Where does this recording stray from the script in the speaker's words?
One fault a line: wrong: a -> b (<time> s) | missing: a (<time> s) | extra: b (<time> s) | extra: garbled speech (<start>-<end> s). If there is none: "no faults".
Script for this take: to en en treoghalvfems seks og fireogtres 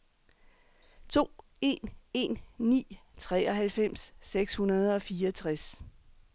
extra: ni (2.6 s)
extra: hundrede (4.5 s)